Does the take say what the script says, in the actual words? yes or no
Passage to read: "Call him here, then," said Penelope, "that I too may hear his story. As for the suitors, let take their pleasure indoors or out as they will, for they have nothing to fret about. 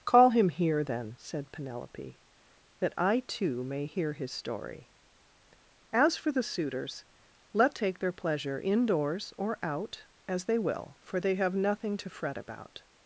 yes